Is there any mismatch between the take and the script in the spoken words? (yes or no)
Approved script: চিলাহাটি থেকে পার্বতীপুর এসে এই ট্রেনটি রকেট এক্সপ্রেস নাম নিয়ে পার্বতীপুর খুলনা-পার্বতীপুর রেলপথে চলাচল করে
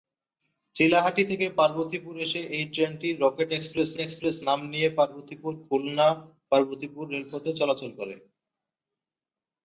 yes